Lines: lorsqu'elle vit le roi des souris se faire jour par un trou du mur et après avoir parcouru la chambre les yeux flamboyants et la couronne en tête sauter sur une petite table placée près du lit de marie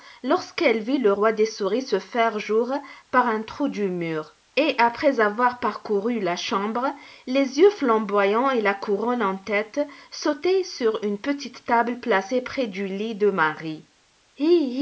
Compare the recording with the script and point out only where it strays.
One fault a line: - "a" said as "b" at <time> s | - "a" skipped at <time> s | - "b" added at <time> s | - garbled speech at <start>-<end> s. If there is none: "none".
none